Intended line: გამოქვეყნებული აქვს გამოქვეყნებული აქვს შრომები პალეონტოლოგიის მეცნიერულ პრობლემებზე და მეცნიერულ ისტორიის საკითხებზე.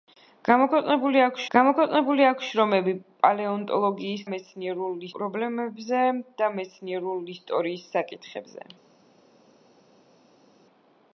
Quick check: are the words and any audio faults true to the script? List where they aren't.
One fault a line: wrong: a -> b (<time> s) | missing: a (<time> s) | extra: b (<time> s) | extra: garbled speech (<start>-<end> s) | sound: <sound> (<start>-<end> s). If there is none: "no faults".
no faults